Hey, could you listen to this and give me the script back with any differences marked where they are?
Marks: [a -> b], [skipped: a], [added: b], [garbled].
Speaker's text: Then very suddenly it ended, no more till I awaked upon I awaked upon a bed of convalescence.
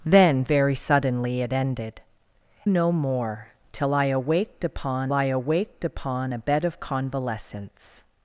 Then very suddenly it ended, no more till I awaked upon I awaked upon a bed of convalescence.